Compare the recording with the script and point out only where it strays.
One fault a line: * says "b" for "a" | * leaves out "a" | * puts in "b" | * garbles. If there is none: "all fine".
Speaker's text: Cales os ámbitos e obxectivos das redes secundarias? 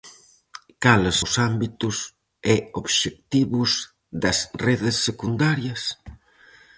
all fine